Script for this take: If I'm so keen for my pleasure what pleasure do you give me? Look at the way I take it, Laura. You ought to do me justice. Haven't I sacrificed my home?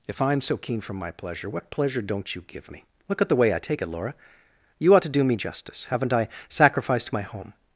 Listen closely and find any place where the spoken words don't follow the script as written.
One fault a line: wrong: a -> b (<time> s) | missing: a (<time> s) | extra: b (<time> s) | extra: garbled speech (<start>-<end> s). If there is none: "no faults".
wrong: do -> don't (2.0 s)